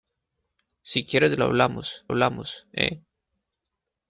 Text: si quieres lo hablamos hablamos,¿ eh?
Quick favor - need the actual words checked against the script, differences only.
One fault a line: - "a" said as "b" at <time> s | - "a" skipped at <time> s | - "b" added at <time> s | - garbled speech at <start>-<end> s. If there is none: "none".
none